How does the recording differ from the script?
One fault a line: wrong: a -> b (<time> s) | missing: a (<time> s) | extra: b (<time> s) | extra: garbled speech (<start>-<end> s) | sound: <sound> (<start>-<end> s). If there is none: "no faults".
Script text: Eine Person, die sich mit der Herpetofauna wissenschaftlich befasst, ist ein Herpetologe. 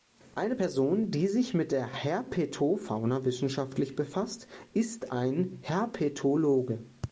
no faults